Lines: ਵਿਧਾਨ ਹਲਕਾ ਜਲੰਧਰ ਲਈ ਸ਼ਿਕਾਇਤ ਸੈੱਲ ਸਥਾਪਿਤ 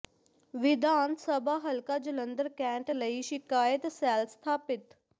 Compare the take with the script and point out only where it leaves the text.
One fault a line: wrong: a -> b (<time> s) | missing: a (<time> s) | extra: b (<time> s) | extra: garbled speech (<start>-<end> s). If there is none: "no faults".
extra: ਸਭਾ (1.1 s)
extra: ਕੈਂਟ (2.5 s)